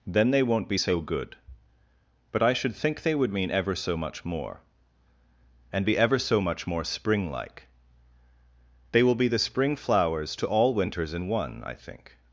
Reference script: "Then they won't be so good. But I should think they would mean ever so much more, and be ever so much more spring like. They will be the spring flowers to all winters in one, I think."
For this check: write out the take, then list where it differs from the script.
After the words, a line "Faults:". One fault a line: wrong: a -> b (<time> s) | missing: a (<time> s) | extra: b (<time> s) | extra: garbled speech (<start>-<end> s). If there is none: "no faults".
"Then they won't be so good. But I should think they would mean ever so much more, and be ever so much more spring like. They will be the spring flowers to all winters in one, I think."
Faults:
no faults